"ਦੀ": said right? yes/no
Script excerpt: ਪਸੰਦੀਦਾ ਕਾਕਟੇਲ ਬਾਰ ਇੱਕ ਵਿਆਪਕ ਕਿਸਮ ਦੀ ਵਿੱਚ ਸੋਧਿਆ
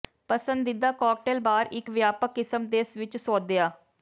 no